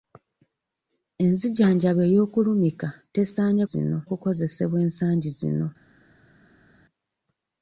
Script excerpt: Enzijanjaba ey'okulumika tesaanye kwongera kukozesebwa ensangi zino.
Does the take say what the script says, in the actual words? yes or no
no